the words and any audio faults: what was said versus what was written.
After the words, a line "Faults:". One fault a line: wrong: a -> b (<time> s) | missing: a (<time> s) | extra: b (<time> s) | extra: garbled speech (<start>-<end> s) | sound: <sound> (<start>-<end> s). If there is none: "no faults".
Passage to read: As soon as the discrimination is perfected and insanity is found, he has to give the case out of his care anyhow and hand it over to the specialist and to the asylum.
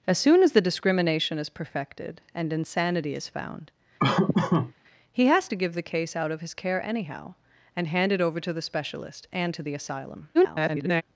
As soon as the discrimination is perfected and insanity is found, he has to give the case out of his care anyhow and hand it over to the specialist and to the asylum. [garbled]
Faults:
sound: laugh (4.0-4.7 s)
extra: garbled speech (10.3-11.0 s)